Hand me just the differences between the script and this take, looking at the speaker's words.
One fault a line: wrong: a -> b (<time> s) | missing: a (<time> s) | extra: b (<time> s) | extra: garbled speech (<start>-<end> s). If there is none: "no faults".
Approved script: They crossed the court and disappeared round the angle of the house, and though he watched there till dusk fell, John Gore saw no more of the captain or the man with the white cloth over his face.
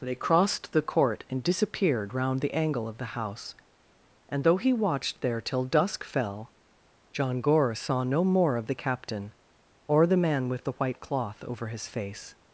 no faults